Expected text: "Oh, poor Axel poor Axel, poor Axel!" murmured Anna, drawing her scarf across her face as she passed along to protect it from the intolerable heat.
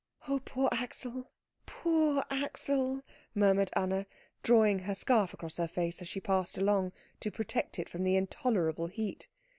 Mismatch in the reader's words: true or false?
true